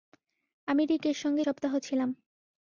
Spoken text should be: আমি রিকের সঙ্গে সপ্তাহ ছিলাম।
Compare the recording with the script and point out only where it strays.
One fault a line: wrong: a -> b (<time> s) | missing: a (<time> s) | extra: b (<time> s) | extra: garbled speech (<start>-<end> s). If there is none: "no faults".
no faults